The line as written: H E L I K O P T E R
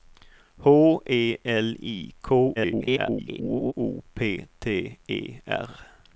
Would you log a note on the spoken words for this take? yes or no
yes